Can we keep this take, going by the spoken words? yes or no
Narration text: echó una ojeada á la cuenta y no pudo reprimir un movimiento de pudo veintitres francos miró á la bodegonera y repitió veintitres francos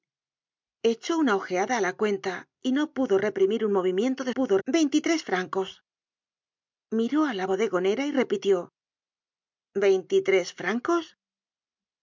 yes